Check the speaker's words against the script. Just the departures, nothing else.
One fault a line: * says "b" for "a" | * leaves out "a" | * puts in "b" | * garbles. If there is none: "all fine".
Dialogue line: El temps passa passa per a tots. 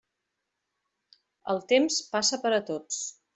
* leaves out "passa"